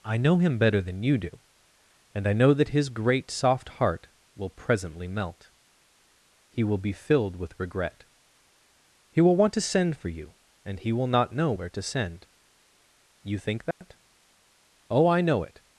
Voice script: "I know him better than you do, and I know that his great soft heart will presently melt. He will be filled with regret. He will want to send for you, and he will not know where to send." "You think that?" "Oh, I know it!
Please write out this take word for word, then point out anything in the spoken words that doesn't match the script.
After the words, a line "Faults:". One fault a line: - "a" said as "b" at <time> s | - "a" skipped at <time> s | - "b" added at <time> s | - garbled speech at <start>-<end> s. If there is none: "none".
"I know him better than you do, and I know that his great soft heart will presently melt. He will be filled with regret. He will want to send for you, and he will not know where to send." "You think that?" "Oh, I know it!
Faults:
none